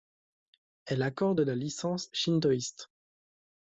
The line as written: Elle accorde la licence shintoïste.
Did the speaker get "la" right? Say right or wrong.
right